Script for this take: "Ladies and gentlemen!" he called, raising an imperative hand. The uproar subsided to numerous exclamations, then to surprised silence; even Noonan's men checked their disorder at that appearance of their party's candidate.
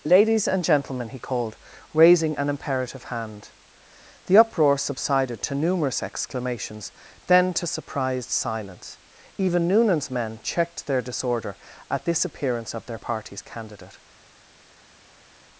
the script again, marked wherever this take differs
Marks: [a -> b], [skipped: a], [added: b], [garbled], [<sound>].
"Ladies and gentlemen!" he called, raising an imperative hand. The uproar subsided to numerous exclamations, then to surprised silence; even Noonan's men checked their disorder at [that -> this] appearance of their party's candidate.